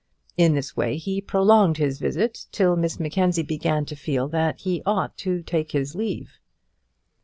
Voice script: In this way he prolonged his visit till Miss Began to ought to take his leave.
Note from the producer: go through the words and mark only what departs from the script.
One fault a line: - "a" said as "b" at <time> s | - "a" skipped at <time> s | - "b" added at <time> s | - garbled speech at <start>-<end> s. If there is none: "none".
- "Mackenzie" added at 3.0 s
- "feel that he" added at 4.0 s